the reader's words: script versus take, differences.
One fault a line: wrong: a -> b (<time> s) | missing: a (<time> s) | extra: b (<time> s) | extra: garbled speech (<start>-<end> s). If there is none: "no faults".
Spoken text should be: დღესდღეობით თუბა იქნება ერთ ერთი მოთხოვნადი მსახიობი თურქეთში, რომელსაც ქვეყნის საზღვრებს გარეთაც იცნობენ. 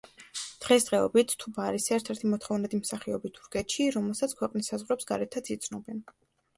wrong: იქნება -> არის (1.7 s)